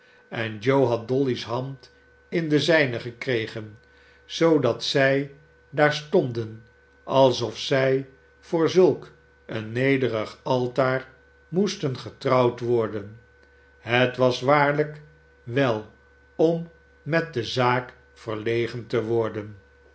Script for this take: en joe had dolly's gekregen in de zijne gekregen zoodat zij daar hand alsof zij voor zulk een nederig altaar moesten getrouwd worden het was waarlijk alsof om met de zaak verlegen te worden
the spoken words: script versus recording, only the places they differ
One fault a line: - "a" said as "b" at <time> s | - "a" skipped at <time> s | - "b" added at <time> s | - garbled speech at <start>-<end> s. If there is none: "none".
- "gekregen" said as "hand" at 1.4 s
- "hand" said as "stonden" at 5.9 s
- "alsof" said as "wel" at 15.4 s